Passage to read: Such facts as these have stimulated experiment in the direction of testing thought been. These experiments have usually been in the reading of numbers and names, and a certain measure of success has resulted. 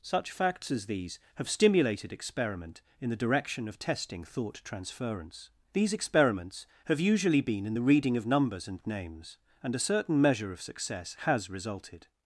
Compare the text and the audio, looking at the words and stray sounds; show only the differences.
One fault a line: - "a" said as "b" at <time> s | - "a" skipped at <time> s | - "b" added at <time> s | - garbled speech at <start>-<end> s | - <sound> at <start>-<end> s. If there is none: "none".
- "been" said as "transference" at 4.6 s